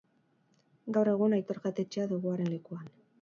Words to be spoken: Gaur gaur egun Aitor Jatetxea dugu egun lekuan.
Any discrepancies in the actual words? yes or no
yes